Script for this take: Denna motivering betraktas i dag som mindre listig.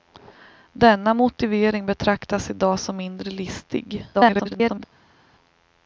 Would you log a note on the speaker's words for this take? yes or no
yes